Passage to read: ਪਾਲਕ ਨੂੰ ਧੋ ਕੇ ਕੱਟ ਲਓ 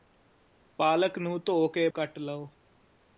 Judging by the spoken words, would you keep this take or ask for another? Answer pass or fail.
pass